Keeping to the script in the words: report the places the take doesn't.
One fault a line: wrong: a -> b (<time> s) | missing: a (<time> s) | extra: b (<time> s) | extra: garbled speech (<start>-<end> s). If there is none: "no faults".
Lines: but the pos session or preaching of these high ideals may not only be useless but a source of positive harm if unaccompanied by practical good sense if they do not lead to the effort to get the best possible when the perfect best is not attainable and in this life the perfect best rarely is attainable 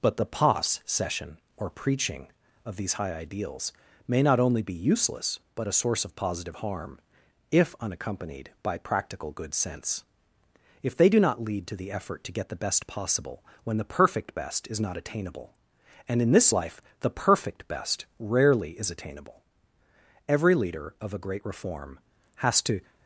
extra: every leader of a great reform has to (20.3 s)